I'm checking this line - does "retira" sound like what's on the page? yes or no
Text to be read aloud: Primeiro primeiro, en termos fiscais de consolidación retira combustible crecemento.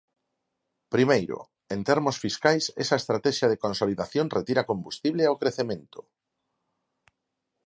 yes